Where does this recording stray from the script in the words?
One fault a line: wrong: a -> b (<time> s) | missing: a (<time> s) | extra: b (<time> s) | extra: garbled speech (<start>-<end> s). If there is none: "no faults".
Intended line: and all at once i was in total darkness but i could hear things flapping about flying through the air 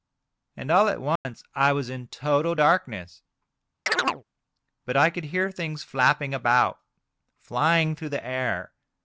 no faults